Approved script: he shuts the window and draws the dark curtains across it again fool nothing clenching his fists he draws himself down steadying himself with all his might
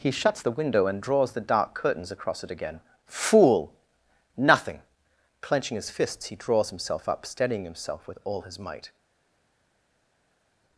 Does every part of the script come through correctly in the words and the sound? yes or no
no